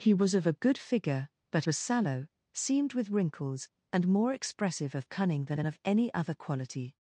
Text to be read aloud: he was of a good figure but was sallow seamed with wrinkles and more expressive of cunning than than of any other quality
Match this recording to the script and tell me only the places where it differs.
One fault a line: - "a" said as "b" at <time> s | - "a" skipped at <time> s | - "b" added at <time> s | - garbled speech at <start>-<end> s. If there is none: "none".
none